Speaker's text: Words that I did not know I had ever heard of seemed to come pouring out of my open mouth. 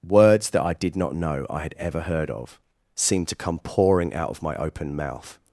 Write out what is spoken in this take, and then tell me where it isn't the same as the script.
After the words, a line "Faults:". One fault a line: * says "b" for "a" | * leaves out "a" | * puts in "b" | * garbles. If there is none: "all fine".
Words that I did not know I had ever heard of seemed to come pouring out of my open mouth.
Faults:
all fine